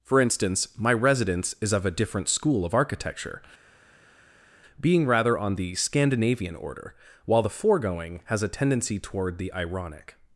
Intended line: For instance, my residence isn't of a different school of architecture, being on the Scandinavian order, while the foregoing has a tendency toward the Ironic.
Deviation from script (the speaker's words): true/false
true